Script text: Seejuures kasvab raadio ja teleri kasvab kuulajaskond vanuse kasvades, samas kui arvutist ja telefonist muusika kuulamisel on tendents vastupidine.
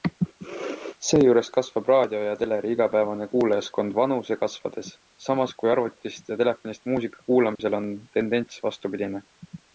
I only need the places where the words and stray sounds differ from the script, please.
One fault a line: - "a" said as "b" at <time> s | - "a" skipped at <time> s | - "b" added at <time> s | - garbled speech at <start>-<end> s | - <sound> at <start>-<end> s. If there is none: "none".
- "kasvab" said as "igapäevane" at 2.8 s
- dropout at 7.6-7.6 s